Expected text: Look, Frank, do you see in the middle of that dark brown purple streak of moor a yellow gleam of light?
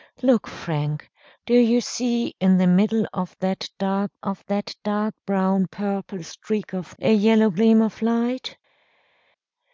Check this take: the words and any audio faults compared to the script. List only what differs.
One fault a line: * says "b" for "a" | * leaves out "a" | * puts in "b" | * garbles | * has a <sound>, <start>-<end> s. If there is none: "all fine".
* puts in "of that dark"
* leaves out "moor"